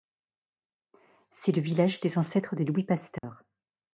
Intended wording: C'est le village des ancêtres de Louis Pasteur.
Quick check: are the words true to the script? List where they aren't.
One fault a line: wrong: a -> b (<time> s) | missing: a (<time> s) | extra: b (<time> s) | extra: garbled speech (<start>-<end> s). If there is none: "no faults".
no faults